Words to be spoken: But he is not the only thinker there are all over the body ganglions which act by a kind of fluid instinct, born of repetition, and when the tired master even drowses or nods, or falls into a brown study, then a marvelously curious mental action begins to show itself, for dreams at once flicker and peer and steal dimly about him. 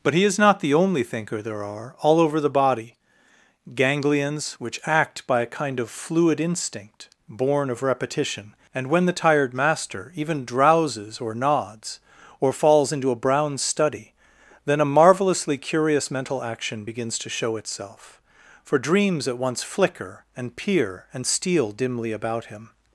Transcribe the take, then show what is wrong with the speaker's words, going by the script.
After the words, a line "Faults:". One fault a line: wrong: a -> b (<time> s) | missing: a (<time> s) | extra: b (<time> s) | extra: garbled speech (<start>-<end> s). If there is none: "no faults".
But he is not the only thinker there are all over the body ganglions which act by a kind of fluid instinct, born of repetition, and when the tired master even drowses or nods, or falls into a brown study, then a marvelously curious mental action begins to show itself, for dreams at once flicker and peer and steal dimly about him.
Faults:
no faults